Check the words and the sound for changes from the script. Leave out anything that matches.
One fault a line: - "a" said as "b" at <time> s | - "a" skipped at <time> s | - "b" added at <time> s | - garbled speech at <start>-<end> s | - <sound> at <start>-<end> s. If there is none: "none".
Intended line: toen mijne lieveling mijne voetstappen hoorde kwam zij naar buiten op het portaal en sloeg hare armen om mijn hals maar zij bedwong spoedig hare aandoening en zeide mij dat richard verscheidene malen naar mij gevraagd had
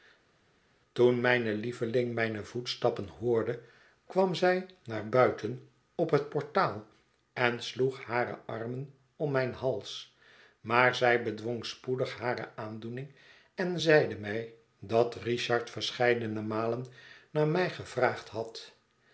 none